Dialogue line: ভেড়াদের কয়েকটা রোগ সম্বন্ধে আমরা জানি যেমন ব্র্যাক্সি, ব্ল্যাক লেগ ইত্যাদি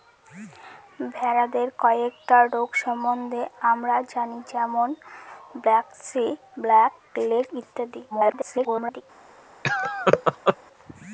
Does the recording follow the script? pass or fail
fail